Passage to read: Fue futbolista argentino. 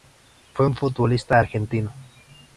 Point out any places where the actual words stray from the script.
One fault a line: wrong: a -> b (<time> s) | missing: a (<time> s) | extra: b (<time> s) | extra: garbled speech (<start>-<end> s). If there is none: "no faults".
extra: un (0.6 s)